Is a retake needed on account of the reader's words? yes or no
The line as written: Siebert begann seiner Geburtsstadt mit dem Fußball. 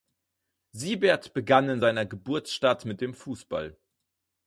yes